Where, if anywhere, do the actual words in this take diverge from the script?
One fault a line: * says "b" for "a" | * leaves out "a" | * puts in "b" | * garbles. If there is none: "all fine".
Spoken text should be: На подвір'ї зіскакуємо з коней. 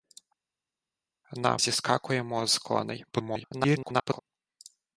* leaves out "подвір'ї"
* garbles